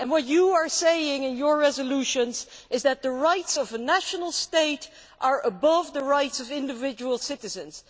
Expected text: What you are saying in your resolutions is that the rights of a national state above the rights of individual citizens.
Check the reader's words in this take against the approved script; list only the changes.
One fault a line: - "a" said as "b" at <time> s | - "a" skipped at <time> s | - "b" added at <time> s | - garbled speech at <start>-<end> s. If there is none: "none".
- "are" added at 5.2 s